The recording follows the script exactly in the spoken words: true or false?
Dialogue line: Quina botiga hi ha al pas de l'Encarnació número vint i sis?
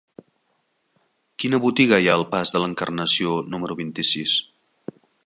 true